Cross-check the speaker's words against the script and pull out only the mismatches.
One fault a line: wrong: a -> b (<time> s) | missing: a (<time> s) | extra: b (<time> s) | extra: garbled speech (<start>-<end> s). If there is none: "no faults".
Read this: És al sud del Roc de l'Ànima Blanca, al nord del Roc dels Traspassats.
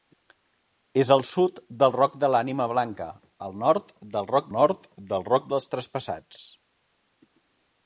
extra: nord del Roc (4.6 s)